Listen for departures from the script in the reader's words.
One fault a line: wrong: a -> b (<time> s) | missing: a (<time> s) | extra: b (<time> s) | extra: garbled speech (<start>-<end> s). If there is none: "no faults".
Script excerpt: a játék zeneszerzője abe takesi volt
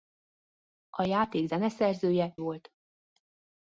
missing: abe takesi (2.3 s)